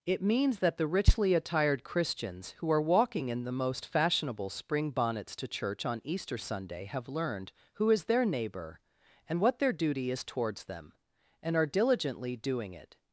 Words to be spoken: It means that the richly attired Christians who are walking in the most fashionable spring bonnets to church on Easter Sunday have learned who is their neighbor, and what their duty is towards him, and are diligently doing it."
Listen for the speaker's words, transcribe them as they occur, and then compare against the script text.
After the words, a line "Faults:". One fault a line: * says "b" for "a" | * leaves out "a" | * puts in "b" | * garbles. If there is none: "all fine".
It means that the richly attired Christians who are walking in the most fashionable spring bonnets to church on Easter Sunday have learned who is their neighbor, and what their duty is towards them, and are diligently doing it."
Faults:
* says "them" for "him"